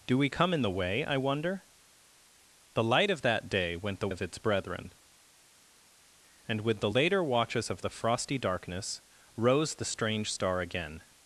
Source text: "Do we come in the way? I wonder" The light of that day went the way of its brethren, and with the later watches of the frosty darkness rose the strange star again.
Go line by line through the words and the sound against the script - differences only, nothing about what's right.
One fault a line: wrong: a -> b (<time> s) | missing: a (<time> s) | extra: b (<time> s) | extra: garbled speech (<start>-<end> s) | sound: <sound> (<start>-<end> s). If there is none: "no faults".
missing: way (4.1 s)